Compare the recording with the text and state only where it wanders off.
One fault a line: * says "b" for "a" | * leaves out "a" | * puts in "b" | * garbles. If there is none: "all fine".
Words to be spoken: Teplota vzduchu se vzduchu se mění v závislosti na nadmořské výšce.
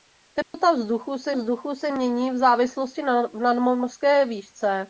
all fine